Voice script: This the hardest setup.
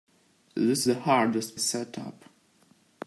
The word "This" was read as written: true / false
true